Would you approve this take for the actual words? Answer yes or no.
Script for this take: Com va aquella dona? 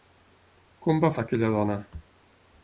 yes